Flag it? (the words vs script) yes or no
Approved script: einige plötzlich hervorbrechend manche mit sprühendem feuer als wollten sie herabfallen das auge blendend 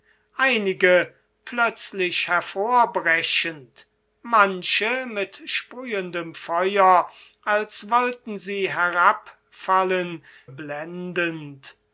yes